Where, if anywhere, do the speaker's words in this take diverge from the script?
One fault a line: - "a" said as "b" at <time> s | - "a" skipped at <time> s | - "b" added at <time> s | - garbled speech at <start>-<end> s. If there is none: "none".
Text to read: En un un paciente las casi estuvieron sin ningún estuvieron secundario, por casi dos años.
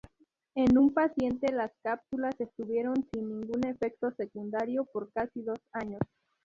- "un" skipped at 0.9 s
- "casi" said as "cápsulas" at 1.8 s
- "estuvieron" said as "efecto" at 3.7 s